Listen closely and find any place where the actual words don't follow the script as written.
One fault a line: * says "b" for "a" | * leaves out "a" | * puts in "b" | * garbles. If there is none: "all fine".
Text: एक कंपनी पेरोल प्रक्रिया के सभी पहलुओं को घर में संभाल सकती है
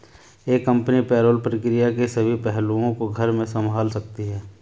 all fine